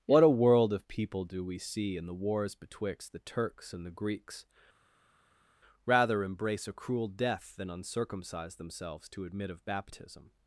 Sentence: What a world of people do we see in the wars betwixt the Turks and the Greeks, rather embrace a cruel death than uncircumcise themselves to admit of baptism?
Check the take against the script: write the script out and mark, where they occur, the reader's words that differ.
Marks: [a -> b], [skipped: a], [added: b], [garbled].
What a world of people do we see in the wars betwixt the Turks and the Greeks, rather embrace a cruel death than uncircumcise themselves to admit of baptism?